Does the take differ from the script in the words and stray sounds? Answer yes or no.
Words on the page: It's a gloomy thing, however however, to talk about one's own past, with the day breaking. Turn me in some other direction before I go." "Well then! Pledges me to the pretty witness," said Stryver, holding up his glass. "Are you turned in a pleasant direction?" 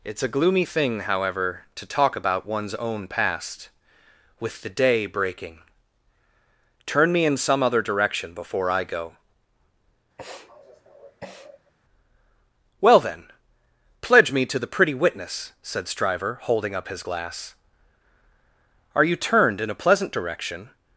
yes